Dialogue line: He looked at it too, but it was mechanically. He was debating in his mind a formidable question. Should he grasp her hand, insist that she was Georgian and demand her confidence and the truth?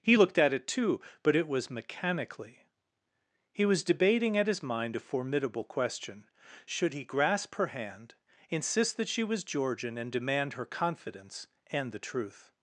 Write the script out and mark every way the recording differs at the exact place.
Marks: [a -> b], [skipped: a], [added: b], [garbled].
He looked at it too, but it was mechanically. He was debating [in -> at] his mind a formidable question. Should he grasp her hand, insist that she was Georgian and demand her confidence and the truth?